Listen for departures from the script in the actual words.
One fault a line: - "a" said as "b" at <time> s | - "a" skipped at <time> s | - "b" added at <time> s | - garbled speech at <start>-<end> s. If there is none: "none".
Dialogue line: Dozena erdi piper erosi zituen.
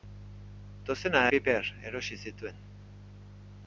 - "erdi" skipped at 1.2 s